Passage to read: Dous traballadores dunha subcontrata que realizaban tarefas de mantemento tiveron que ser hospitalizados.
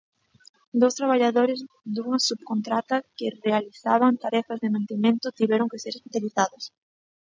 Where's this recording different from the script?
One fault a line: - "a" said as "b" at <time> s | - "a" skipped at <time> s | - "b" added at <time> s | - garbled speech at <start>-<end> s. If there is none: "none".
none